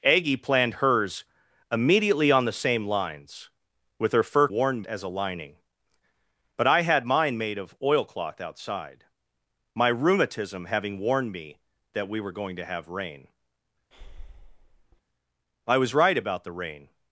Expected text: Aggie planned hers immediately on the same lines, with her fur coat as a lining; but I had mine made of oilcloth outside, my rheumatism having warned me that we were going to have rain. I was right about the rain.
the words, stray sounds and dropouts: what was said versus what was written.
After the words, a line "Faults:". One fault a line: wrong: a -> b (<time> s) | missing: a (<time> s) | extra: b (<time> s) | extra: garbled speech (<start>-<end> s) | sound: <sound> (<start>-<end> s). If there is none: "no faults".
Aggie planned hers immediately on the same lines, with her fur warned as a lining; but I had mine made of oilcloth outside, my rheumatism having warned me that we were going to have rain. I was right about the rain.
Faults:
wrong: coat -> warned (4.5 s)
sound: breath (13.9-15.0 s)